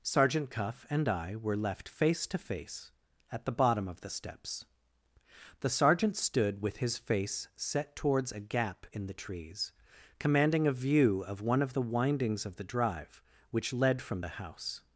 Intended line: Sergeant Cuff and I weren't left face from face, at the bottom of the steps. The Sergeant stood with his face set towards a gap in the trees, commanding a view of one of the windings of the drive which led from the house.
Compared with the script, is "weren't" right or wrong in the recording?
wrong